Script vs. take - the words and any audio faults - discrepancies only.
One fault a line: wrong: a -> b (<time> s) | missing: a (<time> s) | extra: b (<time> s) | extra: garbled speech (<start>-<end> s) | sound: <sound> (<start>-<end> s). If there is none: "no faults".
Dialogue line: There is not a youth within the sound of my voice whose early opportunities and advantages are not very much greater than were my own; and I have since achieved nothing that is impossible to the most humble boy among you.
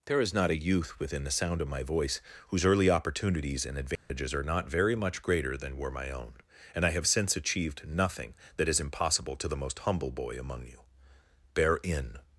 sound: dropout (4.0-4.1 s)
extra: Bear in (11.5 s)